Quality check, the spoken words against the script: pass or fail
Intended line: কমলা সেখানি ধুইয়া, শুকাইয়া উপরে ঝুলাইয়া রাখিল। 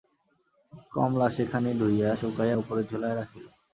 pass